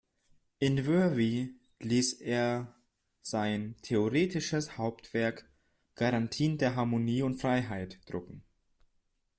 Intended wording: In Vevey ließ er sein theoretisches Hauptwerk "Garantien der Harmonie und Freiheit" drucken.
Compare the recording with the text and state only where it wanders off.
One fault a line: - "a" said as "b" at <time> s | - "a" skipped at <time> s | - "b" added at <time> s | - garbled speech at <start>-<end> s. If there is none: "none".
none